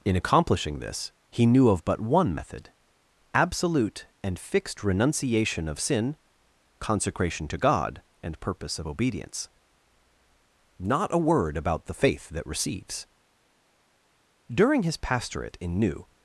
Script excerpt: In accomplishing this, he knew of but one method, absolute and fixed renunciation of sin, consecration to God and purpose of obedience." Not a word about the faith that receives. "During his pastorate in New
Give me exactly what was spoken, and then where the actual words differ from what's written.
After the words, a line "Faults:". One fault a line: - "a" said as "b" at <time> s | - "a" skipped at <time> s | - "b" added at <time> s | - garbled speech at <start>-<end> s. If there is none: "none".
In accomplishing this, he knew of but one method, absolute and fixed renunciation of sin, consecration to God and purpose of obedience." Not a word about the faith that receives. "During his pastorate in New
Faults:
none